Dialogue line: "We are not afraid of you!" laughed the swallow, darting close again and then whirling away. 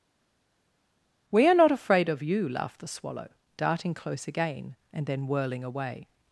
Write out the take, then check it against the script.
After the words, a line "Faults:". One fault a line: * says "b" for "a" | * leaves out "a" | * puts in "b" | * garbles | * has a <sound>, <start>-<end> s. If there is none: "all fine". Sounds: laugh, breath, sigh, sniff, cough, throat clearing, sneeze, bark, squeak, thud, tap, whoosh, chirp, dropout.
"We are not afraid of you!" laughed the swallow, darting close again and then whirling away.
Faults:
all fine